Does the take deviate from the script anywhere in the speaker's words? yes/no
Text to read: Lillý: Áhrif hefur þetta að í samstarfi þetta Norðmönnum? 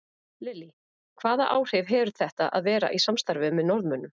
yes